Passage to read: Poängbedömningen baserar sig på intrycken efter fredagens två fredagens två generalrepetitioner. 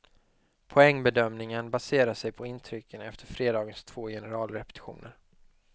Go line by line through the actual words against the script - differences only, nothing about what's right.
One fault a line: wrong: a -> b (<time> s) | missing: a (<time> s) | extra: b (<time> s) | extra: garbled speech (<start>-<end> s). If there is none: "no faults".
missing: fredagens två (4.1 s)